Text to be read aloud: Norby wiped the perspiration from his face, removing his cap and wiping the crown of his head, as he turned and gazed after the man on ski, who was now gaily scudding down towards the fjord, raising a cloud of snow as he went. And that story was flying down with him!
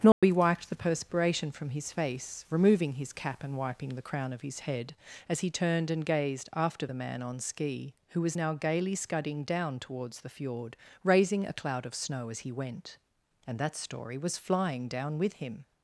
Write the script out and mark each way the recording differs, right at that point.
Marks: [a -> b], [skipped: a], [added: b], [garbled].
Norby wiped the perspiration from his face, removing his cap and wiping the crown of his head, as he turned and gazed after the man on ski, who was now gaily scudding down towards the fjord, raising a cloud of snow as he went. And that story was flying down with him!